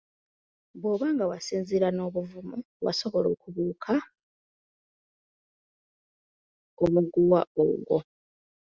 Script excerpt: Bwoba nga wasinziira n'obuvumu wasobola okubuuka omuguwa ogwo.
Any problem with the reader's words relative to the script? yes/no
no